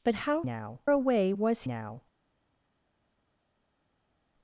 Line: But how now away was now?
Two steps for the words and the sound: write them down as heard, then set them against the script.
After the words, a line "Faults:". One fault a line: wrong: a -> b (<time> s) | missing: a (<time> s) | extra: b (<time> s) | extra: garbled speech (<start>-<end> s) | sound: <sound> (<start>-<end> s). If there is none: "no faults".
But how now away was now?
Faults:
no faults